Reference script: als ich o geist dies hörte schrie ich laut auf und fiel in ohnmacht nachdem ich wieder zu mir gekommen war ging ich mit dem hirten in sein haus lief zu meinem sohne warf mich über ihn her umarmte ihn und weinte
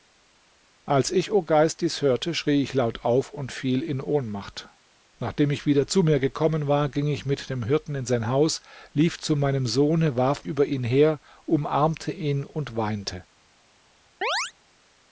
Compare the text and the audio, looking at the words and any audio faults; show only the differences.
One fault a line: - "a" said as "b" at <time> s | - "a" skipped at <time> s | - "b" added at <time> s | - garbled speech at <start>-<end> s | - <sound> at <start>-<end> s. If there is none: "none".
- "mich" skipped at 10.5 s
- chirp at 14.2-14.5 s